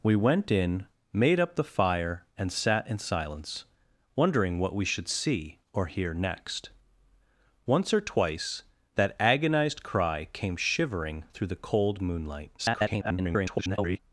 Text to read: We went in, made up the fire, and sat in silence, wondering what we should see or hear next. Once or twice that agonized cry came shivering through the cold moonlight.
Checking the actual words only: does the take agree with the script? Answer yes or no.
no